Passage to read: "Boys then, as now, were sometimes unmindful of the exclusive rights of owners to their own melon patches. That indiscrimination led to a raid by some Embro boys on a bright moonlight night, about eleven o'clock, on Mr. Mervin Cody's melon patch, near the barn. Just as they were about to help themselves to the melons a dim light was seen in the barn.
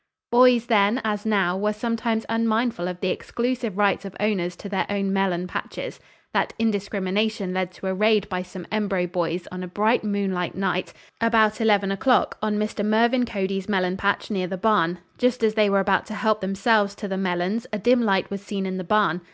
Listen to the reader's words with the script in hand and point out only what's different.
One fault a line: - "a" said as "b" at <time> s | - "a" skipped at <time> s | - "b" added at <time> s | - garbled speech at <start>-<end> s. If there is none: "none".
none